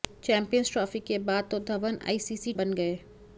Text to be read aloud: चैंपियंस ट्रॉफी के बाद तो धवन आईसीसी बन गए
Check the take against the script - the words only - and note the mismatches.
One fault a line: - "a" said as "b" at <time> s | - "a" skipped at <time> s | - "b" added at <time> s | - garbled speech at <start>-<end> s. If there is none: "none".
none